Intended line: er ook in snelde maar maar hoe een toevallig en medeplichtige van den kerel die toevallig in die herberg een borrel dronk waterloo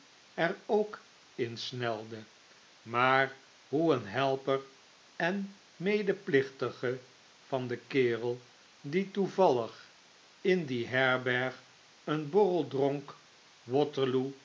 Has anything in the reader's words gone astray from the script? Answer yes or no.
yes